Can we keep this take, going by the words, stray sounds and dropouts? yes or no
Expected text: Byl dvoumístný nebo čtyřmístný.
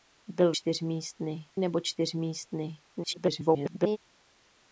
no